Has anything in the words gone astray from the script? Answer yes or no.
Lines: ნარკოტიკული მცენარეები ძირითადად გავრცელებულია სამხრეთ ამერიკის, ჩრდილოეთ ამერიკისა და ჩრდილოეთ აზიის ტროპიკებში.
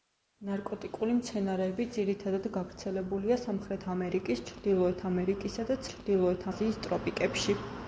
no